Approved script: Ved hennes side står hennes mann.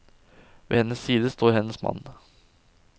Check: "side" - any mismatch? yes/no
no